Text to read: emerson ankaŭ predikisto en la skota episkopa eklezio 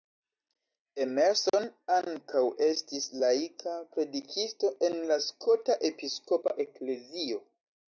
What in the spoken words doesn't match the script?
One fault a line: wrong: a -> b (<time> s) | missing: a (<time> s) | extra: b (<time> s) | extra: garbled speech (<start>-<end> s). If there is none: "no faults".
extra: estis laika (2.7 s)